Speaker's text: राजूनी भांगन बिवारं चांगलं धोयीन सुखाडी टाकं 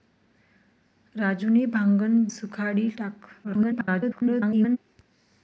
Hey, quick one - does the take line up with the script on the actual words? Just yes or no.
no